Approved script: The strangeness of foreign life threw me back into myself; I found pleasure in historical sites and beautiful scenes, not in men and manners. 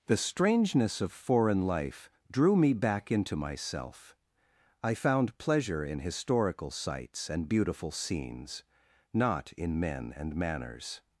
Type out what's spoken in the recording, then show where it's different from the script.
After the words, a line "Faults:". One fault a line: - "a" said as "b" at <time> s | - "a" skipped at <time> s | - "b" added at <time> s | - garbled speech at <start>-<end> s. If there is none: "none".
The strangeness of foreign life drew me back into myself; I found pleasure in historical sites and beautiful scenes, not in men and manners.
Faults:
- "threw" said as "drew" at 2.3 s